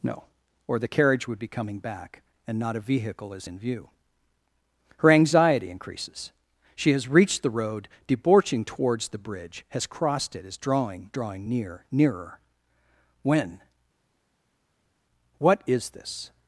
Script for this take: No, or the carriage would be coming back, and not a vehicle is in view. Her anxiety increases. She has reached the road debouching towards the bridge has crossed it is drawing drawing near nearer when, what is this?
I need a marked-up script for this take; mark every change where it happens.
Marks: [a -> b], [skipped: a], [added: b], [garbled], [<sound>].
No, or the carriage would be coming back, and not a vehicle is in view. Her anxiety increases. She has reached the road debouching towards the bridge has crossed it is drawing drawing near nearer when, what is this?